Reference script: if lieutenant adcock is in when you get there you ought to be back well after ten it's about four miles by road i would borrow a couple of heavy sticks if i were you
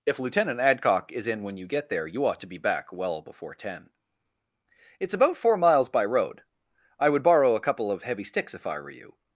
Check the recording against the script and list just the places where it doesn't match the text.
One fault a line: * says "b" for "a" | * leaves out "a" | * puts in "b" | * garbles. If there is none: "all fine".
* says "before" for "after"